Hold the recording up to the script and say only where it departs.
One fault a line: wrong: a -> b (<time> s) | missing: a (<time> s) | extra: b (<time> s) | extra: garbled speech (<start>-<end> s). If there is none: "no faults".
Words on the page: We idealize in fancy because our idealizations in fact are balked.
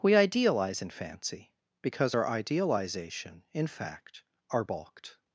wrong: idealizations -> idealization (2.2 s)